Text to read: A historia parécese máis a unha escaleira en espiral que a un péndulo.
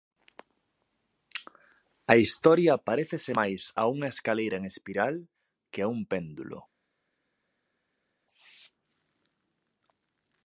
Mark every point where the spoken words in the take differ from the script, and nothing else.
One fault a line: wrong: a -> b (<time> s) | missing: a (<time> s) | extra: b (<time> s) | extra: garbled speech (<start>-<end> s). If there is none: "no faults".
no faults